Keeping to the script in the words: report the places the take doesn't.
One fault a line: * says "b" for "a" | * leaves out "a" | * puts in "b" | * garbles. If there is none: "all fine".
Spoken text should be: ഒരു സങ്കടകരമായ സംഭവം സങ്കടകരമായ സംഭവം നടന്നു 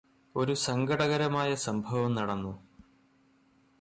* leaves out "സങ്കടകരമായ സംഭവം"